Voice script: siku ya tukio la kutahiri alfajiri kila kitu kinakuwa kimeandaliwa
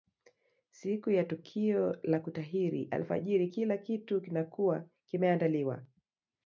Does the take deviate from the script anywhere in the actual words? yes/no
no